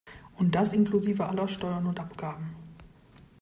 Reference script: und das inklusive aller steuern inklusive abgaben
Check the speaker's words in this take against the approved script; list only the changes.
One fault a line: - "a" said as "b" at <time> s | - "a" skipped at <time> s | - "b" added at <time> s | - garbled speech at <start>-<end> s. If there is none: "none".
- "inklusive" said as "und" at 1.9 s